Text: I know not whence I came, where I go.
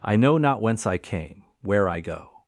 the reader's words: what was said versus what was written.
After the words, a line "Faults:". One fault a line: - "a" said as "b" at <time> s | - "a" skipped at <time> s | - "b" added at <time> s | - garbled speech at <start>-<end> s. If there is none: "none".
I know not whence I came, where I go.
Faults:
none